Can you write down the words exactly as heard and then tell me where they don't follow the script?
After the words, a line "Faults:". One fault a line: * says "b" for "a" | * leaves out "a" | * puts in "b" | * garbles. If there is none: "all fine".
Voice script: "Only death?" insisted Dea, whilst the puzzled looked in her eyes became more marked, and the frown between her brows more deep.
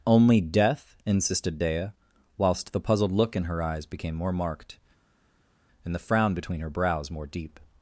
"Only death?" insisted Dea, whilst the puzzled look in her eyes became more marked, and the frown between her brows more deep.
Faults:
* says "look" for "looked"